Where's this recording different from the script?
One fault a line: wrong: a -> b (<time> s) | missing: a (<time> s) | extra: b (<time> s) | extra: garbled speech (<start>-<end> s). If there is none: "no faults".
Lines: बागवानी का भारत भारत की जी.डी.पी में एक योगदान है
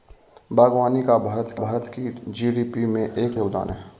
no faults